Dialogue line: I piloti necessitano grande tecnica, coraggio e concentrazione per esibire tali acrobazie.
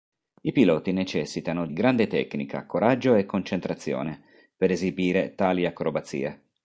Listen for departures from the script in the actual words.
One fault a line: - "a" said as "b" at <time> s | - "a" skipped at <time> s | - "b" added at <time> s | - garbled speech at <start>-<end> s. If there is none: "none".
none